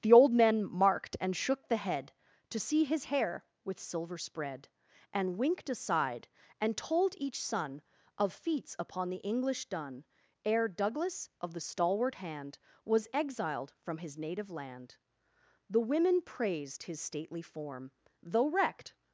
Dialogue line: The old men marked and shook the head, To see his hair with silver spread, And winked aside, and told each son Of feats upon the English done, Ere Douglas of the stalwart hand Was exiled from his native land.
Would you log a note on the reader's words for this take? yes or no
yes